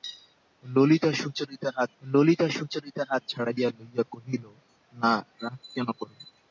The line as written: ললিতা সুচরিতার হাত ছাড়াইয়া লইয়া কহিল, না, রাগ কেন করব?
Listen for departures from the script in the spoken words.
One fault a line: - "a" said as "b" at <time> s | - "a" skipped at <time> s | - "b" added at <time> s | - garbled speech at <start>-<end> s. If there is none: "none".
- "ললিতা সুচরিতার হাত" added at 2.0 s